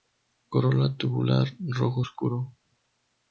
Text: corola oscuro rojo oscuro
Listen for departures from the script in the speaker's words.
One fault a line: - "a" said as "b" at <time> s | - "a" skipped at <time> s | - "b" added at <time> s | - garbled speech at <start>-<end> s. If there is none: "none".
- "oscuro" said as "tubular" at 1.0 s